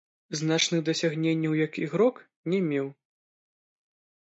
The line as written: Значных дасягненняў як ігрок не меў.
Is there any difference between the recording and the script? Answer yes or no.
no